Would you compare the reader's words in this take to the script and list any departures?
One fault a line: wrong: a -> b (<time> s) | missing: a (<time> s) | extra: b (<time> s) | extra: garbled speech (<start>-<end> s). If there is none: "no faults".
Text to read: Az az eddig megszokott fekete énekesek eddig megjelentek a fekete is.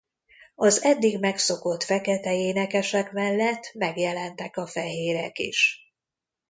missing: az (0.8 s)
wrong: eddig -> mellett (3.1 s)
wrong: fekete -> fehérek (4.7 s)